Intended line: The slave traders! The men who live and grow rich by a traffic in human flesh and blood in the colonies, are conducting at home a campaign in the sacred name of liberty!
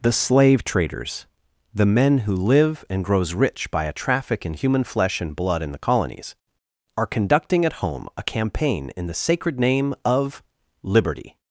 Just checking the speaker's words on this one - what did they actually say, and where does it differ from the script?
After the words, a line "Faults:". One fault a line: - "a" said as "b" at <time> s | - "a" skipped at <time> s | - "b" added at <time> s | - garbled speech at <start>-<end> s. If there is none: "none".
The slave traders! The men who live and grows rich by a traffic in human flesh and blood in the colonies, are conducting at home a campaign in the sacred name of liberty!
Faults:
- "grow" said as "grows" at 3.0 s